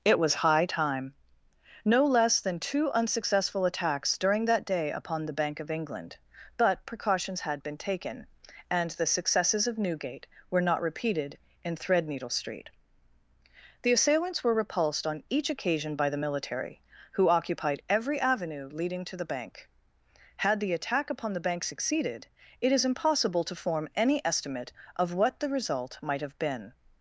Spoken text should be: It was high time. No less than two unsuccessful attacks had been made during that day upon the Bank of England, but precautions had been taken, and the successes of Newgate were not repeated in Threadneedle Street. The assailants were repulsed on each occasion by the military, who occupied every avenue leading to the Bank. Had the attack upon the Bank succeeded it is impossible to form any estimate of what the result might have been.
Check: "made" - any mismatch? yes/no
yes